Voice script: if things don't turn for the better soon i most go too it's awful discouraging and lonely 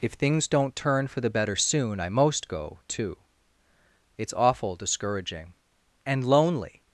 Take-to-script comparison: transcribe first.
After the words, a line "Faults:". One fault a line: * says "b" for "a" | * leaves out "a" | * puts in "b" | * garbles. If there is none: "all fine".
if things don't turn for the better soon i most go too it's awful discouraging and lonely
Faults:
all fine